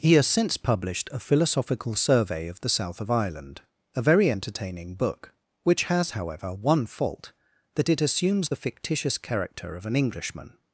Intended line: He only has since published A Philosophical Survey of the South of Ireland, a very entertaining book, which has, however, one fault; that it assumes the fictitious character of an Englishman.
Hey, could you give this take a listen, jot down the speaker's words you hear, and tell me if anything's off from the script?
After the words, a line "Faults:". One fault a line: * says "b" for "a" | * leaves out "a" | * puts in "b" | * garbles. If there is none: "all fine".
He has since published A Philosophical Survey of the South of Ireland, a very entertaining book, which has, however, one fault; that it assumes the fictitious character of an Englishman.
Faults:
* leaves out "only"